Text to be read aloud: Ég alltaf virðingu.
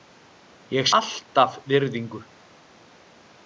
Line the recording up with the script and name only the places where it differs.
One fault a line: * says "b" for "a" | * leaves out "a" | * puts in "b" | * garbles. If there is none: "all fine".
all fine